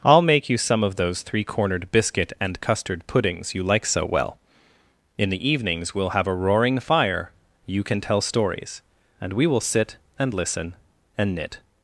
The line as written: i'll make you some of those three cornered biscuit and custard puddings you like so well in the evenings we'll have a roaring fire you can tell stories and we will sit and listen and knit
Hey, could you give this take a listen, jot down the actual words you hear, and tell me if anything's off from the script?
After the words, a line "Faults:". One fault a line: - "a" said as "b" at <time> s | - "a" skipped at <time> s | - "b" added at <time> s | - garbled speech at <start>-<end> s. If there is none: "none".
i'll make you some of those three cornered biscuit and custard puddings you like so well in the evenings we'll have a roaring fire you can tell stories and we will sit and listen and knit
Faults:
none